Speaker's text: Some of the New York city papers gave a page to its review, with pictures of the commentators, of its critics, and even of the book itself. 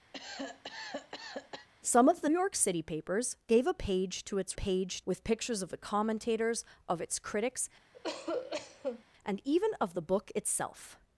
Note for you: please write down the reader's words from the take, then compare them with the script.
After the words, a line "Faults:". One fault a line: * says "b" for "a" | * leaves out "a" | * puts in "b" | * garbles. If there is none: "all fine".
Some of the York city papers gave a page to its page, with pictures of the commentators, of its critics, and even of the book itself.
Faults:
* leaves out "New"
* says "page" for "review"